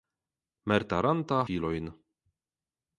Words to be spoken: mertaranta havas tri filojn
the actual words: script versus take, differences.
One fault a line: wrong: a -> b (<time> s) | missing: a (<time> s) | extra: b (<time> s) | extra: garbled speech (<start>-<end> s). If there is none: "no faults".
missing: havas tri (1.4 s)